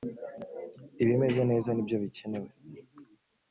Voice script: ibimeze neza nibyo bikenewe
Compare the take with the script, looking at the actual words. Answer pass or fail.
pass